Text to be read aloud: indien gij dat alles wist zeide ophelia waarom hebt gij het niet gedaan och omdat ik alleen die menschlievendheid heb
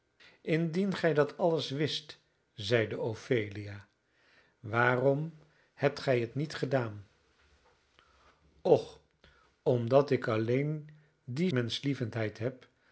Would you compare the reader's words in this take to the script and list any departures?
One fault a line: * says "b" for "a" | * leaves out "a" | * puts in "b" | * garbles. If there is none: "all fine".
all fine